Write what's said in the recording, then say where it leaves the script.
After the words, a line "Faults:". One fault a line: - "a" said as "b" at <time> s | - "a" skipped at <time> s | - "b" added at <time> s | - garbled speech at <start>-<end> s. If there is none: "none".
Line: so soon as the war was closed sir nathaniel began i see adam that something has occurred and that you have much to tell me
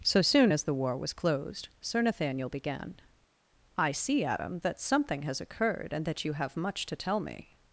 so soon as the war was closed sir nathaniel began i see adam that something has occurred and that you have much to tell me
Faults:
none